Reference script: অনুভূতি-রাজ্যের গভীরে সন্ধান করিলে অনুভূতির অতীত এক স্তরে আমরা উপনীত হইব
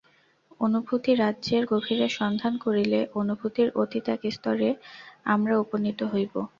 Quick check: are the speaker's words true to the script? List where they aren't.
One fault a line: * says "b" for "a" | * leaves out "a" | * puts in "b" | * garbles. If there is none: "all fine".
all fine